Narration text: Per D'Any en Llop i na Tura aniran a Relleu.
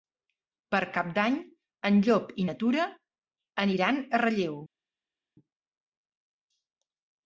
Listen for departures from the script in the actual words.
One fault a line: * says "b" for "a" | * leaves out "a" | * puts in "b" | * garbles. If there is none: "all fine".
* puts in "Cap"